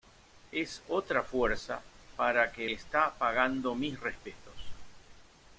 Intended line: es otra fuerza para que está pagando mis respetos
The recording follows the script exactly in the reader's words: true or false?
true